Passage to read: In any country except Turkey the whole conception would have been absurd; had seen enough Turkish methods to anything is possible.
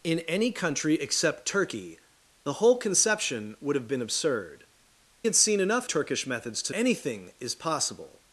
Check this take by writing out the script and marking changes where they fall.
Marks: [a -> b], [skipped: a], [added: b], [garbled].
In any country except Turkey the whole conception would have been absurd; had seen enough Turkish methods to anything is possible.